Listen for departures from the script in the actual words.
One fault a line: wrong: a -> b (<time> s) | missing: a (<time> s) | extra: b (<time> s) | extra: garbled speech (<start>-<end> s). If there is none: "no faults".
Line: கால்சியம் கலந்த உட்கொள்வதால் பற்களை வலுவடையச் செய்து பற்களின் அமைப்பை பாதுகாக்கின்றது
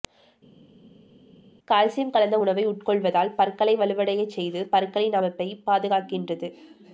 extra: உணவை (2.4 s)